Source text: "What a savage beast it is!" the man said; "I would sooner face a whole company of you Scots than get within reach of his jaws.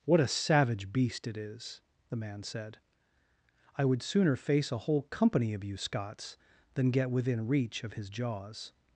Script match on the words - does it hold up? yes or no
yes